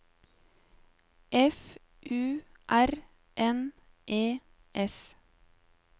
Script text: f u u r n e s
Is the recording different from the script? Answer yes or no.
yes